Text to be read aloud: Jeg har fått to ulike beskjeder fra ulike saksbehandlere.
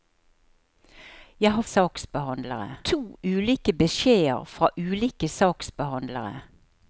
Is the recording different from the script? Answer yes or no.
yes